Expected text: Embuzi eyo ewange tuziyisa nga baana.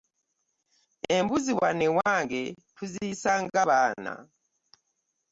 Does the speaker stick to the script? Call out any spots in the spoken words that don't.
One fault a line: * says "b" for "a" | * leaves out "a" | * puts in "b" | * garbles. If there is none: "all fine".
* says "wano" for "eyo"